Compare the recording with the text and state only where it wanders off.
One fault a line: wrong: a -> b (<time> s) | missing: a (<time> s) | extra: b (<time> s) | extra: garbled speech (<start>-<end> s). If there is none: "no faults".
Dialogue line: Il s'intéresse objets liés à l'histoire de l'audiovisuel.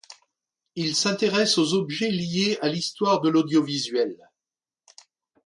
extra: aux (1.6 s)